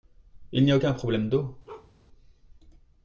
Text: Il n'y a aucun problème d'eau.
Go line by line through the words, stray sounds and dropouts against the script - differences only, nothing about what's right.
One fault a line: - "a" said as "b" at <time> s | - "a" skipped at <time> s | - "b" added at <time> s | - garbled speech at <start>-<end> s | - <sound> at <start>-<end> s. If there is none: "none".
- bark at 1.7-1.9 s